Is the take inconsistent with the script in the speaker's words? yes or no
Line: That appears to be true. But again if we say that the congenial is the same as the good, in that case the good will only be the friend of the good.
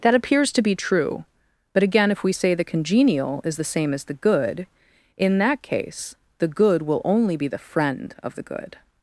yes